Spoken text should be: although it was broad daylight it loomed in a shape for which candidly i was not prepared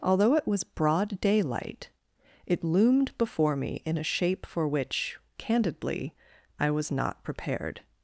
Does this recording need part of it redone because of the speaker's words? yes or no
yes